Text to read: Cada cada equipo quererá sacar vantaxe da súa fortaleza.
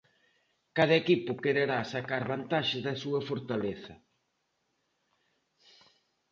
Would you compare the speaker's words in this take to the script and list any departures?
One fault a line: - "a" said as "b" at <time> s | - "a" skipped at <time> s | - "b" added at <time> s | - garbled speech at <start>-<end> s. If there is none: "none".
- "cada" skipped at 0.9 s